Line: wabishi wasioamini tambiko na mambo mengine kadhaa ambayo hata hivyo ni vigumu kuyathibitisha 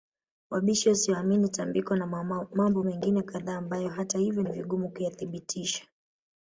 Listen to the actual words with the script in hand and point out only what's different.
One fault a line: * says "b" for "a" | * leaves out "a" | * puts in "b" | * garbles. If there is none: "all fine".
all fine